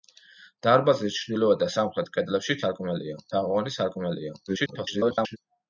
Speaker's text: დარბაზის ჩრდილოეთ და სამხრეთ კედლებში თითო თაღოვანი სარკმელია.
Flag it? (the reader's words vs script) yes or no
yes